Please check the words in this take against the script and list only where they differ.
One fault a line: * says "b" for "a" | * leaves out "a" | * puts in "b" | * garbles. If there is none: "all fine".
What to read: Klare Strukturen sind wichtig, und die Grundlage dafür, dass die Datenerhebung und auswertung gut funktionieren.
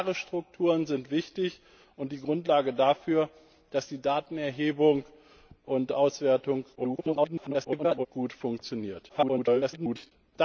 * garbles
* garbles